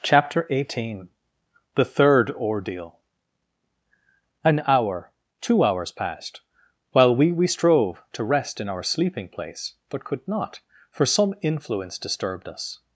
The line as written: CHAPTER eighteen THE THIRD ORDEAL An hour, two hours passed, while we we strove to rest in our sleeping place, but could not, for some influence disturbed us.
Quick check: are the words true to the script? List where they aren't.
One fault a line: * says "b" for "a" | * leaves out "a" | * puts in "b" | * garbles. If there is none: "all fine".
all fine